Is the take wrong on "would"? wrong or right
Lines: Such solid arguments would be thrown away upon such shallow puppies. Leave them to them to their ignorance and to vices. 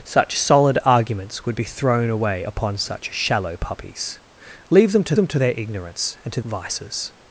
right